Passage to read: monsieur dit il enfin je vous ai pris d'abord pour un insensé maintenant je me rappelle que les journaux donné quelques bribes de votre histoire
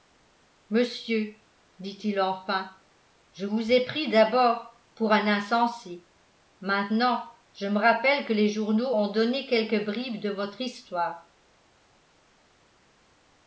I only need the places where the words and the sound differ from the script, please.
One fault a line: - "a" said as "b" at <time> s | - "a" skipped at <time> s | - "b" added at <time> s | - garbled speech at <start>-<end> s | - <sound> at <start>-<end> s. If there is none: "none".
- "ont" added at 8.9 s